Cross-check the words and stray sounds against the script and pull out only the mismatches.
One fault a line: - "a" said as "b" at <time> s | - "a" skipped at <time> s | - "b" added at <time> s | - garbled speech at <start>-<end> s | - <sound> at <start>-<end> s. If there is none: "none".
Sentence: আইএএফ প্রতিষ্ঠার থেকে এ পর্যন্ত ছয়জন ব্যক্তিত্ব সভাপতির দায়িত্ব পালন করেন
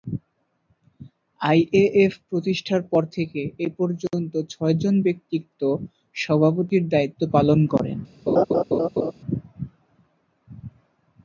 - "পর" added at 2.9 s
- laugh at 8.3-9.1 s